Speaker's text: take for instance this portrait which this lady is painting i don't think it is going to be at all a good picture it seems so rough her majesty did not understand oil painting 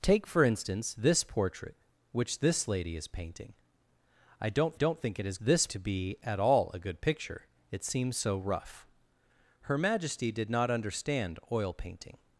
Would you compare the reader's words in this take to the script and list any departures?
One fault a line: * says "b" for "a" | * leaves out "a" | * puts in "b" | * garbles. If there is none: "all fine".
* puts in "don't"
* says "this" for "going"